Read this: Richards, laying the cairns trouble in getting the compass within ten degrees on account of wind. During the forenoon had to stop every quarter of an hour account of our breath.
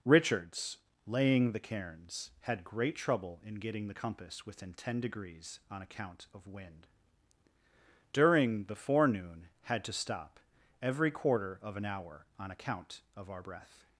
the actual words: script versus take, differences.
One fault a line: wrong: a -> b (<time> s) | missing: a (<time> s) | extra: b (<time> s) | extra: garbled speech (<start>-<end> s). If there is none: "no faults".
extra: had great (2.4 s)
extra: on (12.4 s)